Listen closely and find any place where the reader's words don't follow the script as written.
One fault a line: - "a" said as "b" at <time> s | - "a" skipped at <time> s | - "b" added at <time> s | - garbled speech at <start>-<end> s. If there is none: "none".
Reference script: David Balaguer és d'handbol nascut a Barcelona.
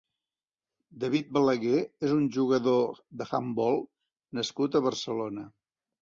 - "un jugador" added at 2.2 s